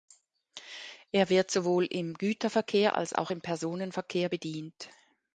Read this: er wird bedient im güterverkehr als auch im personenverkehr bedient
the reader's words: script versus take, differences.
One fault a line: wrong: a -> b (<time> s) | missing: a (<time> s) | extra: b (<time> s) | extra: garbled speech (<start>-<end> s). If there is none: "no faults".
wrong: bedient -> sowohl (1.5 s)